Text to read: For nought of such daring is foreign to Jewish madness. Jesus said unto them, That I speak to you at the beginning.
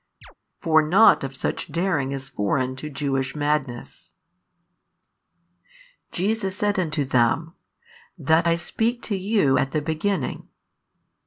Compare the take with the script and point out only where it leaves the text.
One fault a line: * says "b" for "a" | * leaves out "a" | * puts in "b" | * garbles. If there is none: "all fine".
all fine